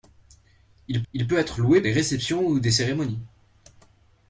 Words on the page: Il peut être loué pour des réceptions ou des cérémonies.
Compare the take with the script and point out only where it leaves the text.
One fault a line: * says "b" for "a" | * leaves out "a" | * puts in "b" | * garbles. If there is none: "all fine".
* puts in "il"
* leaves out "pour"